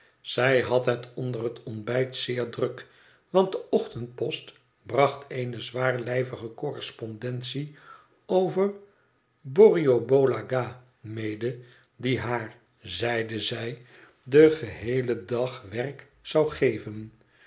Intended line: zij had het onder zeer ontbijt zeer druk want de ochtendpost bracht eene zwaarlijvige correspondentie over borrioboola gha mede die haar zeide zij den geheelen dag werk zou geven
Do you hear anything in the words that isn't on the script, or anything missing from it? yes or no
yes